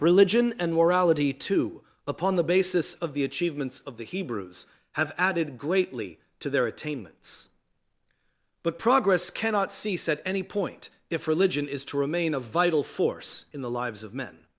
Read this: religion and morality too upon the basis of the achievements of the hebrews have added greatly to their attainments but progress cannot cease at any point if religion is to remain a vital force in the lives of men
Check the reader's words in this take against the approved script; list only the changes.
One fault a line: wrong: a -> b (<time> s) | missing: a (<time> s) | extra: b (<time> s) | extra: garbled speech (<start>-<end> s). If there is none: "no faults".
no faults